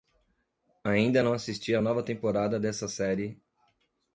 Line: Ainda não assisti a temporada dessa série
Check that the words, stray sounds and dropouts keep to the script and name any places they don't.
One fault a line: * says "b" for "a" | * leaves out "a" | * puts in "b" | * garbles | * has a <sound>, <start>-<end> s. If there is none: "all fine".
* puts in "nova"